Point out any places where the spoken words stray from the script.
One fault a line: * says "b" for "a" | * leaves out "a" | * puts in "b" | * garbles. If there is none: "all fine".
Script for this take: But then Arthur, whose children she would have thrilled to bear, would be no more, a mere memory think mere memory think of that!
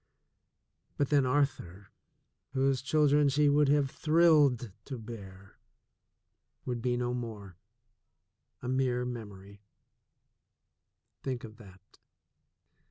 * leaves out "mere memory think"